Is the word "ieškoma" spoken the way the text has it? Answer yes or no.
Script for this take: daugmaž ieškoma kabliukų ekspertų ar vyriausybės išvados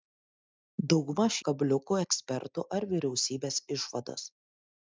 no